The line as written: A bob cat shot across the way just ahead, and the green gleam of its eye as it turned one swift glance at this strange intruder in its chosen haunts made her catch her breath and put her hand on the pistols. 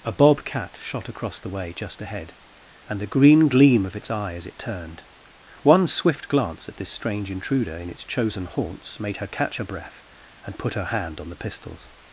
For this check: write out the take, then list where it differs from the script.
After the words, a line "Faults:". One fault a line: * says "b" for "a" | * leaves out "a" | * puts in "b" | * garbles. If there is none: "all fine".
A bob cat shot across the way just ahead, and the green gleam of its eye as it turned one swift glance at this strange intruder in its chosen haunts made her catch her breath and put her hand on the pistols.
Faults:
all fine